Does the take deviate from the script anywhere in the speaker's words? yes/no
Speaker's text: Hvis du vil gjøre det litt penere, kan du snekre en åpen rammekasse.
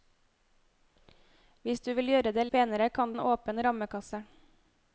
yes